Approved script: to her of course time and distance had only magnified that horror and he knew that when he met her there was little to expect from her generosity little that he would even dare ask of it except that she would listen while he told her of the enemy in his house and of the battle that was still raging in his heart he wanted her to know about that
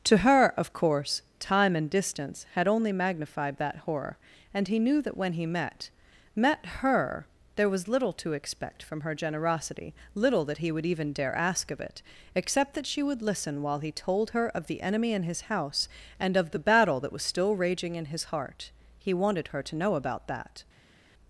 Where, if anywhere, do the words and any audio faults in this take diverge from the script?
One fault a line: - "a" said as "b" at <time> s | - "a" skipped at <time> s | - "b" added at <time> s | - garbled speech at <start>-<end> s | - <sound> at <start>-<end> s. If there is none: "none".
- "met" added at 6.3 s